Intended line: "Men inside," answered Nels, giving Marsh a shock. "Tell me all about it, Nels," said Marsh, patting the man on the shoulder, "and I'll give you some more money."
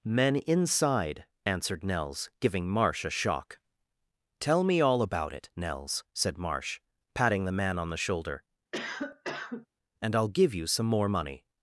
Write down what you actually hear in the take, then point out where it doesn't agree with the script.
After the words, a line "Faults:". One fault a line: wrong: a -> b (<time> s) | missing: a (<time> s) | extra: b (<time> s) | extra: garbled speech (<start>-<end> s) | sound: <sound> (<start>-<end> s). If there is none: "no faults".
"Men inside," answered Nels, giving Marsh a shock. "Tell me all about it, Nels," said Marsh, patting the man on the shoulder, "and I'll give you some more money."
Faults:
sound: cough (8.7-9.7 s)